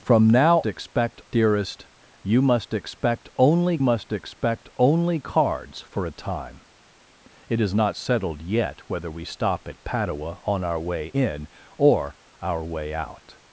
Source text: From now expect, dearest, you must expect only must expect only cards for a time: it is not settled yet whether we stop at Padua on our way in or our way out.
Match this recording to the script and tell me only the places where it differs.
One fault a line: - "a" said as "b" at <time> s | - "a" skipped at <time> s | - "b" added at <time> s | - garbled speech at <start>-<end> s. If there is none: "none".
none